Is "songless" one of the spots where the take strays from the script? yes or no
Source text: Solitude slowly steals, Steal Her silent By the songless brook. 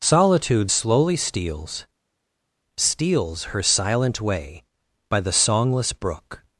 no